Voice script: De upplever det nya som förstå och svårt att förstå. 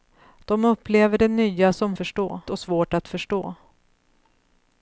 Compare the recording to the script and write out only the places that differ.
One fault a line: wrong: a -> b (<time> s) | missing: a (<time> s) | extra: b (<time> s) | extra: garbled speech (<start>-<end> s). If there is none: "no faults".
no faults